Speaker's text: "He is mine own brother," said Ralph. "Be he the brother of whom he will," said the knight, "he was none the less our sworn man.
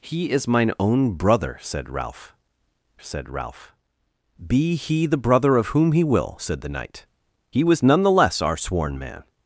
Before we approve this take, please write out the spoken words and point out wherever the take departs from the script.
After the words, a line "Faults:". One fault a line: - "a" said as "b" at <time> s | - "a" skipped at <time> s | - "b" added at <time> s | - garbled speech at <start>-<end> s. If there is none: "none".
"He is mine own brother," said Ralph said Ralph. "Be he the brother of whom he will," said the knight, "he was none the less our sworn man.
Faults:
- "said Ralph" added at 3.0 s